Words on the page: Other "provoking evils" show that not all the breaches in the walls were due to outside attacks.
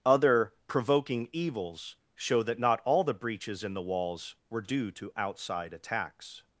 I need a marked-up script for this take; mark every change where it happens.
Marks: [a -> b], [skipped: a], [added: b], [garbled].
Other "provoking evils" show that not all the breaches in the walls were due to outside attacks.